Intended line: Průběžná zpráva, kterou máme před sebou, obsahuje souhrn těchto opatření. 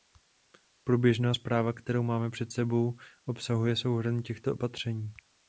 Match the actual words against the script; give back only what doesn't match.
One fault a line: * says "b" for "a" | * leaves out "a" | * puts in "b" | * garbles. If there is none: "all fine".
all fine